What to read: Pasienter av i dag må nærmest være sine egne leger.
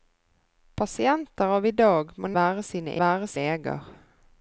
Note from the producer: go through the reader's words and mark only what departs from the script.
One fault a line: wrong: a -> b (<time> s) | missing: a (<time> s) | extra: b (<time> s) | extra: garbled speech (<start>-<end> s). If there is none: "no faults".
missing: nærmest (2.3 s)
wrong: egne -> være (3.0 s)